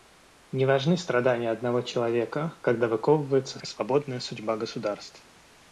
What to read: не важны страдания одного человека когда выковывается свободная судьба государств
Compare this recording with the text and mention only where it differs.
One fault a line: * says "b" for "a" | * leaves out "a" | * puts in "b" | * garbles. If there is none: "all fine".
all fine